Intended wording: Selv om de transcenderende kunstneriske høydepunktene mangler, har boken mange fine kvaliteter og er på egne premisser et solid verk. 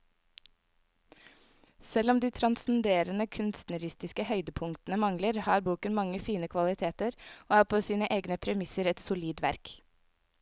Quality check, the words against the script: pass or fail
fail